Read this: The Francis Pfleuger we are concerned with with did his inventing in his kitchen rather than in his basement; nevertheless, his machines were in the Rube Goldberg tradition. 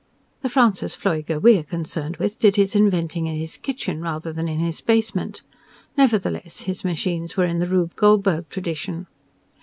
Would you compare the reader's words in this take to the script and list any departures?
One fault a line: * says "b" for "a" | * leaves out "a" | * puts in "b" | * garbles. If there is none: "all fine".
* leaves out "with"